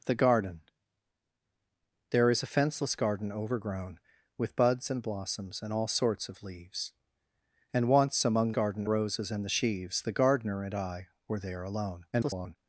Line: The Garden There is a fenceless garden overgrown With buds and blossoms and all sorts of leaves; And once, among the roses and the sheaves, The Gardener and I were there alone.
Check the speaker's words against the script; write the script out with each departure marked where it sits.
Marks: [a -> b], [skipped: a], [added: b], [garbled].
The Garden There is a fenceless garden overgrown With buds and blossoms and all sorts of leaves; And once, among [the -> garden] roses and the sheaves, The Gardener and I were there alone. [garbled]